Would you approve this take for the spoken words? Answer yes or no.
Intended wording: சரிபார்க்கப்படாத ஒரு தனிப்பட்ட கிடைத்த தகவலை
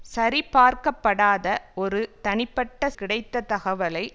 yes